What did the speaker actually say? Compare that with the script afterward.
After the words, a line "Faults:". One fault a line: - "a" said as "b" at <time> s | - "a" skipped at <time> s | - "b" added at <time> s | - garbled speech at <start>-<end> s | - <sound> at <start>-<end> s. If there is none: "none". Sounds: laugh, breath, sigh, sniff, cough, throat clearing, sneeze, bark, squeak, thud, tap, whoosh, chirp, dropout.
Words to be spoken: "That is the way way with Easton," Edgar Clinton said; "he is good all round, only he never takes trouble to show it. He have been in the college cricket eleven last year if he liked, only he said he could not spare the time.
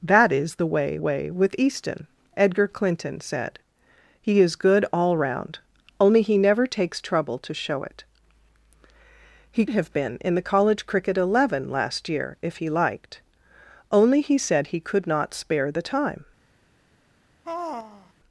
"That is the way way with Easton," Edgar Clinton said; "he is good all round, only he never takes trouble to show it. He have been in the college cricket eleven last year if he liked, only he said he could not spare the time.
Faults:
- sigh at 17.4-18.1 s